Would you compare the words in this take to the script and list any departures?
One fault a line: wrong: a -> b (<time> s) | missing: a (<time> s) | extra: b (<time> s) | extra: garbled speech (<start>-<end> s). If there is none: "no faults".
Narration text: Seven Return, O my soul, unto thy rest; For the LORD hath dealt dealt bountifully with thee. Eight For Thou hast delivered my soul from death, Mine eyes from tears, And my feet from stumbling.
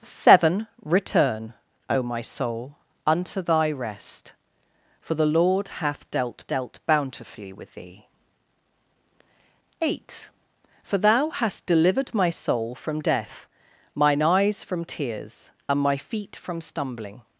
no faults